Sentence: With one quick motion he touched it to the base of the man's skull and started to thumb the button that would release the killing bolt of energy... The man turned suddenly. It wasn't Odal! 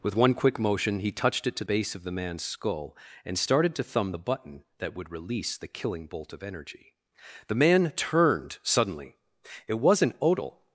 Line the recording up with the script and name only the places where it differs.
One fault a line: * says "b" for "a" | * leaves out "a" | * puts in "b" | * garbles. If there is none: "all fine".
* leaves out "the"